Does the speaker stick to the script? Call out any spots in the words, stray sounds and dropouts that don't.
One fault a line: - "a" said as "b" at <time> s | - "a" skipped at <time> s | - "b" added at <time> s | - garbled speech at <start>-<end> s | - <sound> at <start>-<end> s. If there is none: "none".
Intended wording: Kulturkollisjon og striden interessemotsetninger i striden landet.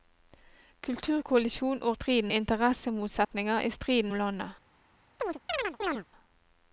- dropout at 3.2-3.3 s
- chirp at 5.2-6.1 s